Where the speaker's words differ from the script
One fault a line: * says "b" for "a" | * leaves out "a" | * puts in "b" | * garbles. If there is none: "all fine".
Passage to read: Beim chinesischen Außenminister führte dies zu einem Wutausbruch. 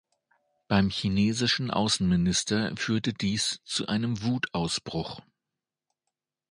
all fine